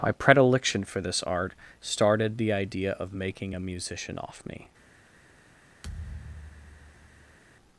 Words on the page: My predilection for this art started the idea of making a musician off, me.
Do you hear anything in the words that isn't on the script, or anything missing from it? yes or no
no